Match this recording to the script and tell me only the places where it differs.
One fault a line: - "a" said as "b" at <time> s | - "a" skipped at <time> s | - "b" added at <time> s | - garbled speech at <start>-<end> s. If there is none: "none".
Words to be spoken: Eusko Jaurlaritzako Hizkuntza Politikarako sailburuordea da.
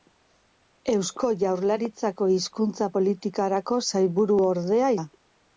none